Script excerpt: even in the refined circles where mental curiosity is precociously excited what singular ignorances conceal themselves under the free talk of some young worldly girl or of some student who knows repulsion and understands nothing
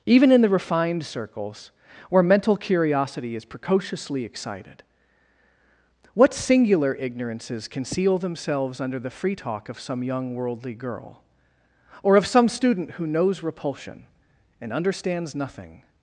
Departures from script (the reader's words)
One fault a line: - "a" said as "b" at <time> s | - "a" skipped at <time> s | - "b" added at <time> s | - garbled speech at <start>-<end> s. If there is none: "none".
none